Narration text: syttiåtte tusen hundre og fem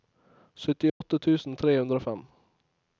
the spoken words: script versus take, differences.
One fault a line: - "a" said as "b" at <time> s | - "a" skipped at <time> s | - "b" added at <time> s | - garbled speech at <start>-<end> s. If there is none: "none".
- "tre" added at 1.6 s